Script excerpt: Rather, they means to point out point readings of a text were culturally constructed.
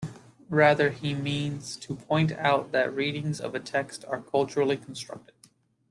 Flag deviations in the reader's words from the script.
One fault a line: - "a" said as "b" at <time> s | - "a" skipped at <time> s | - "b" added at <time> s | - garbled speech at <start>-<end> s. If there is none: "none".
- "they" said as "he" at 0.9 s
- "point" said as "that" at 2.7 s
- "were" said as "are" at 4.0 s